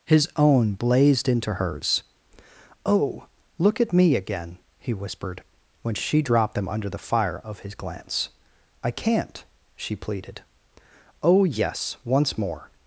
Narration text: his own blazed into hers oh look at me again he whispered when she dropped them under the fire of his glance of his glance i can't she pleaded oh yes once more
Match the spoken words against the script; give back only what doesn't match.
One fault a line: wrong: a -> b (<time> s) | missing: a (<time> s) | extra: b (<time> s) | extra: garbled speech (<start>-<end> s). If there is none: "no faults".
missing: of his glance (8.3 s)